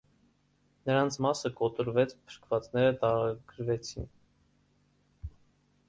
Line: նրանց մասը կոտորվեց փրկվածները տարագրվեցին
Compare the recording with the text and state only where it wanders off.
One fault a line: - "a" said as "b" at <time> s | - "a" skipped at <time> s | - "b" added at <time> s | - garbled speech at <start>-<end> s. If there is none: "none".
none